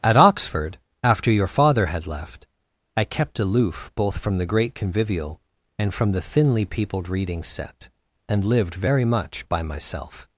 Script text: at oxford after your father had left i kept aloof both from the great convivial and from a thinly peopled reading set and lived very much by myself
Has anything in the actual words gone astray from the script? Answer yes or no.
yes